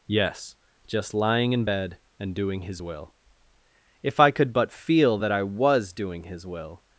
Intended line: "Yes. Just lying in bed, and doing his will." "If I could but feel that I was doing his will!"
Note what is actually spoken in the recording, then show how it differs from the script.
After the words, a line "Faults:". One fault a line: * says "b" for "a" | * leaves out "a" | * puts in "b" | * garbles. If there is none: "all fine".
"Yes. Just lying in bed, and doing his will." "If I could but feel that I was doing his will!"
Faults:
all fine